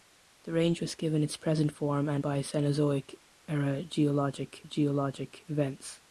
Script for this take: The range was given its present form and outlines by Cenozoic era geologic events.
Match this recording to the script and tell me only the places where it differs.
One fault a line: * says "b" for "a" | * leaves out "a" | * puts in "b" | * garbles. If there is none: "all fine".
* leaves out "outlines"
* puts in "geologic"